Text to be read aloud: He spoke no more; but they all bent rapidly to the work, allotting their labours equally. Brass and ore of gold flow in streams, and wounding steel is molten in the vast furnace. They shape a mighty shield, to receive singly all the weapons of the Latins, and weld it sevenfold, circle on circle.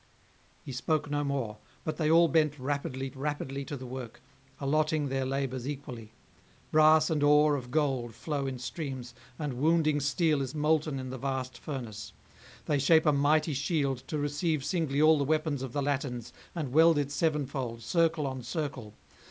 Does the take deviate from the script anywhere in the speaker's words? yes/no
yes